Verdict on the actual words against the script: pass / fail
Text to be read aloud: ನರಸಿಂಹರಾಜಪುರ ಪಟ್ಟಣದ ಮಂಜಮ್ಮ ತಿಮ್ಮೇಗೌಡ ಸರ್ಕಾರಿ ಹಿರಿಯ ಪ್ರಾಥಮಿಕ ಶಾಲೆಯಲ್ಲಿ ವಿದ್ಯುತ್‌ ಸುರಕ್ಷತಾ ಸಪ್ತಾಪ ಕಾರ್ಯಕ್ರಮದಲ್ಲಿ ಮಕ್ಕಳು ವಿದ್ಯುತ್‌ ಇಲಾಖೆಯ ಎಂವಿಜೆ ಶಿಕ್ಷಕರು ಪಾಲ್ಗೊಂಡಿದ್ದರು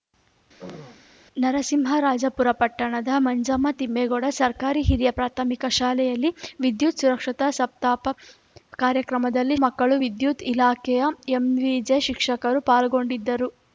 pass